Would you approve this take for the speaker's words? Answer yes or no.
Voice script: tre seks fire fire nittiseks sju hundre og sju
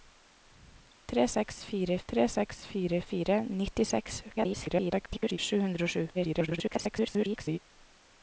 no